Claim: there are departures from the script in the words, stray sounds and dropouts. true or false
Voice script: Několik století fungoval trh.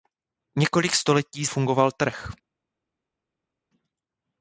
false